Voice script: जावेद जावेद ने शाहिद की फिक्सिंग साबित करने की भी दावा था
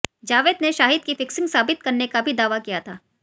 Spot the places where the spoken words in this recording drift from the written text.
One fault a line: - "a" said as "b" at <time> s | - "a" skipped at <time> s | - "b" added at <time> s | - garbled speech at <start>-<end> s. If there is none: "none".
- "जावेद" skipped at 0.6 s
- "की" said as "का" at 2.1 s
- "किया" added at 2.6 s